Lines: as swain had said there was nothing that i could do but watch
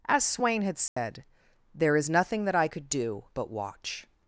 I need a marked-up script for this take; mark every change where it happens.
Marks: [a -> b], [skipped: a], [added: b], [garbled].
as swain had said there [was -> is] nothing that i could do but watch